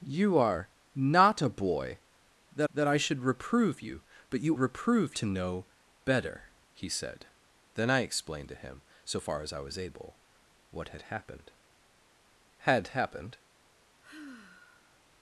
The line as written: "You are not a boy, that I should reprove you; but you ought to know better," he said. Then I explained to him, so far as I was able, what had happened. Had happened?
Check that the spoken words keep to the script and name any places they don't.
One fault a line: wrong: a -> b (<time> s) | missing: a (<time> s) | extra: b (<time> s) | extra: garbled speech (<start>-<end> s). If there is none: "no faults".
extra: that (2.7 s)
wrong: ought -> reprove (4.6 s)